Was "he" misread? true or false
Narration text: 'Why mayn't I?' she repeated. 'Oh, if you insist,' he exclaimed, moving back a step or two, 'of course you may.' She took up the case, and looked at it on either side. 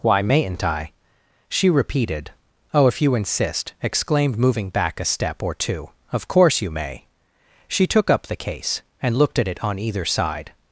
true